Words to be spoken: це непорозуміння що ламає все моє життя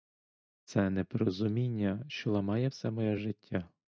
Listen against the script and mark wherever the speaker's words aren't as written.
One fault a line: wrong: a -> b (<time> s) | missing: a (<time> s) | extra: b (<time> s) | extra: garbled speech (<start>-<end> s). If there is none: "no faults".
no faults